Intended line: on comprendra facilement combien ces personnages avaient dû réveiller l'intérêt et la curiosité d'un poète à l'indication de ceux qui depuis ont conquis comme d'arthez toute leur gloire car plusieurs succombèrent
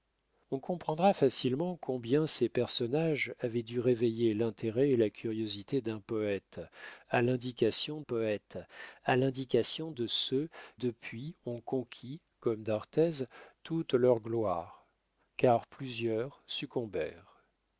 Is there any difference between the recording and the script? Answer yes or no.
yes